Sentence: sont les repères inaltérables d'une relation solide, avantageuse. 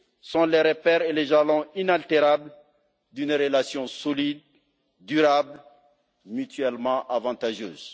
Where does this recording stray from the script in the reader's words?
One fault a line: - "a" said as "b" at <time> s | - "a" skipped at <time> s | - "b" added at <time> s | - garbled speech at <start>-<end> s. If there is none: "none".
- "et les jalons" added at 1.0 s
- "durable mutuellement" added at 5.0 s